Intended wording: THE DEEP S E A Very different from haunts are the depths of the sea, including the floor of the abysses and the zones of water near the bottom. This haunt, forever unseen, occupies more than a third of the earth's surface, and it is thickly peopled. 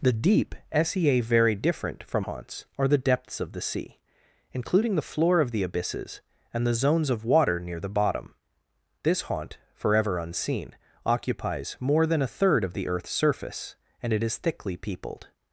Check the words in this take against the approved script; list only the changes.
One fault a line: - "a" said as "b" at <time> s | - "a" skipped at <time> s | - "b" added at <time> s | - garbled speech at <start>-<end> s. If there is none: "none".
none